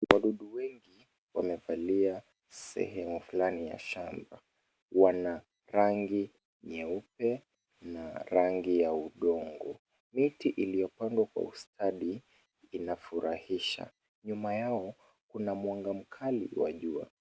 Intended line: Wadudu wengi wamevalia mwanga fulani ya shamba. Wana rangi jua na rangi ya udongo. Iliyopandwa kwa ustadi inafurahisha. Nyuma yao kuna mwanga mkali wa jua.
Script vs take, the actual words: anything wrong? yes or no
yes